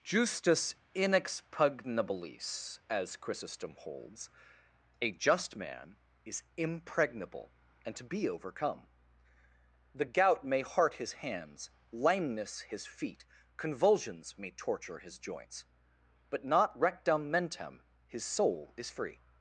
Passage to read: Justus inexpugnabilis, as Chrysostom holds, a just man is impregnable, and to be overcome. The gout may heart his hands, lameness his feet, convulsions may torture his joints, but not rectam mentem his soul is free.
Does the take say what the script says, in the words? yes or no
yes